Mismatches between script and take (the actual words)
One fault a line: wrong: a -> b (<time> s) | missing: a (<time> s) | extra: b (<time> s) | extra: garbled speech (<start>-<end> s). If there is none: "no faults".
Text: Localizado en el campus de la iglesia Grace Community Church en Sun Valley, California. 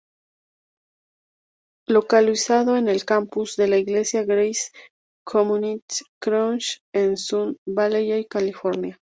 no faults